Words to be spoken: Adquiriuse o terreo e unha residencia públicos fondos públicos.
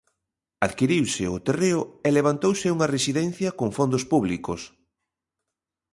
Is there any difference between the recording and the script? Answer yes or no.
yes